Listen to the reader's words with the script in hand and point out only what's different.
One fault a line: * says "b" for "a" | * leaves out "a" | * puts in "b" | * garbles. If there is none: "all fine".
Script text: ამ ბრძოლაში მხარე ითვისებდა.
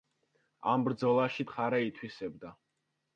all fine